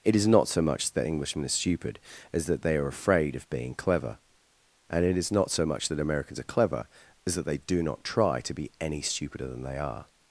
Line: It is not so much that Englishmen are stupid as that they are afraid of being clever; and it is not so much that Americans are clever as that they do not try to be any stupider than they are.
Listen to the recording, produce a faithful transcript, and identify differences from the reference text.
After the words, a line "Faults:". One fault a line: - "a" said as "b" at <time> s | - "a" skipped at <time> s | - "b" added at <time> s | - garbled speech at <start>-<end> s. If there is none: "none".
It is not so much that Englishmen are stupid as that they are afraid of being clever; and it is not so much that Americans are clever as that they do not try to be any stupider than they are.
Faults:
none